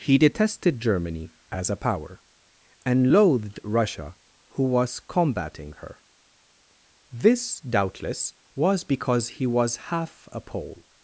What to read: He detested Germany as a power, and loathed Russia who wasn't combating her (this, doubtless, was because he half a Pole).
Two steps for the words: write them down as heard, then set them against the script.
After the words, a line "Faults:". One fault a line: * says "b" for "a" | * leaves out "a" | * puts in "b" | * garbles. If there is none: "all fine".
He detested Germany as a power, and loathed Russia who was combating her (this, doubtless, was because he was half a Pole).
Faults:
* says "was" for "wasn't"
* puts in "was"